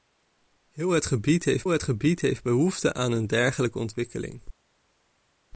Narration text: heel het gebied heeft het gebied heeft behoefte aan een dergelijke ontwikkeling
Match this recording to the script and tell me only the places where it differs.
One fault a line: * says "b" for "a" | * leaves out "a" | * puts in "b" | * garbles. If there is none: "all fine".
all fine